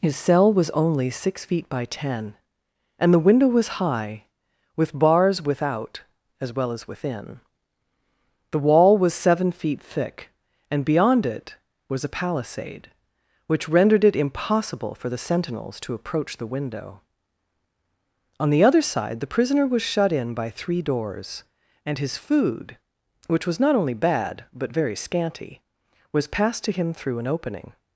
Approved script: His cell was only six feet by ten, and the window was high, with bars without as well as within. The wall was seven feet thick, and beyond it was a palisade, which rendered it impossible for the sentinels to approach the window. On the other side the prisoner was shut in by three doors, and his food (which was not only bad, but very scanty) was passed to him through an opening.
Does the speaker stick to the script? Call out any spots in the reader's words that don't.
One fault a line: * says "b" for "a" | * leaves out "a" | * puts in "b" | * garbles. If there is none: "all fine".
all fine